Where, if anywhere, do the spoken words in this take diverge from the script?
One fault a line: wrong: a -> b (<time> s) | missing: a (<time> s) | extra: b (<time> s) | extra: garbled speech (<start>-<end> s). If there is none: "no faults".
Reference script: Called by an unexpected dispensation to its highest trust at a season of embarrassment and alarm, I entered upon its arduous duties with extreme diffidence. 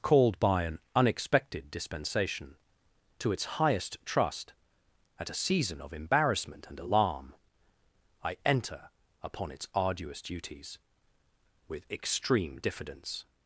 wrong: entered -> enter (8.4 s)